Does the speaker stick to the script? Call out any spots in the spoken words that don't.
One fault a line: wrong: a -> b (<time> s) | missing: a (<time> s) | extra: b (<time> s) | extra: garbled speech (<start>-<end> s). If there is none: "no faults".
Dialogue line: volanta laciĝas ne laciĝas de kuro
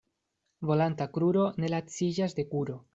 wrong: laciĝas -> kruro (1.2 s)